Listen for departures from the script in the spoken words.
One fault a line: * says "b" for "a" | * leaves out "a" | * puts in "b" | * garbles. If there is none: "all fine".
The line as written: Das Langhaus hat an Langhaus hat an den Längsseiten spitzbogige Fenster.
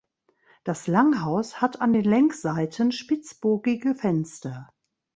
* leaves out "Langhaus hat an"